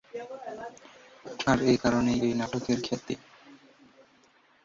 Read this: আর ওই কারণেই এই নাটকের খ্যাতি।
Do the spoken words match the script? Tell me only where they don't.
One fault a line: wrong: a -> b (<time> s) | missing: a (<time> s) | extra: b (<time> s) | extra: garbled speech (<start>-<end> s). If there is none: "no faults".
wrong: ওই -> এই (1.6 s)